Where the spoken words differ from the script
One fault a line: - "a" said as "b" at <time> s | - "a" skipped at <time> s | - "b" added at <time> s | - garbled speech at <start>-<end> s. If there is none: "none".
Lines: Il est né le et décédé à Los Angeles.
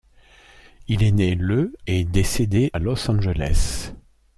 none